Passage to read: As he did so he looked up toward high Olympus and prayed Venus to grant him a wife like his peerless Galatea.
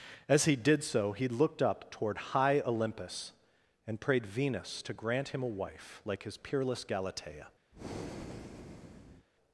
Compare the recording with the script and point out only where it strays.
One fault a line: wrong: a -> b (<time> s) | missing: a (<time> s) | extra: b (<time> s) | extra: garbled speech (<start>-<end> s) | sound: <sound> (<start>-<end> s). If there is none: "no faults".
sound: breath (7.7-9.3 s)